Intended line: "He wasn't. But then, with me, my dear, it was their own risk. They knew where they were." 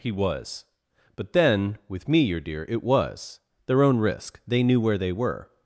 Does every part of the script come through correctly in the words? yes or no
no